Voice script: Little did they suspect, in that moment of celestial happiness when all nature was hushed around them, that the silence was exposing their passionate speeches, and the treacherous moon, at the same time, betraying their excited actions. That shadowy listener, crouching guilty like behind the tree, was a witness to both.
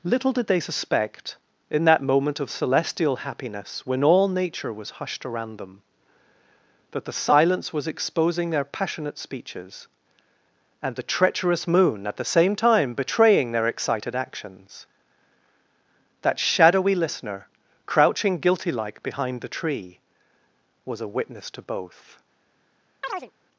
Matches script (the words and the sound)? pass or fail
fail